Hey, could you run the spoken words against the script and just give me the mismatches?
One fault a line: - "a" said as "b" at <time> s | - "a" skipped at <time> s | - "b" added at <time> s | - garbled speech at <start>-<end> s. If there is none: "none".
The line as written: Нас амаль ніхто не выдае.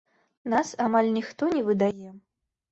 none